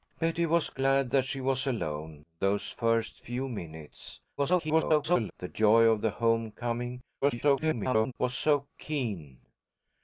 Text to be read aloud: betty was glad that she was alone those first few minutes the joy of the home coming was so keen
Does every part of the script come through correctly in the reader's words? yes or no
no